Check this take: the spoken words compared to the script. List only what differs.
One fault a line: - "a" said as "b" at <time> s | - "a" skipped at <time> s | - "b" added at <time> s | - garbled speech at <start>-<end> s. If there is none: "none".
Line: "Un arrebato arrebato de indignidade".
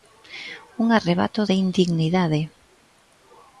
- "arrebato" skipped at 1.4 s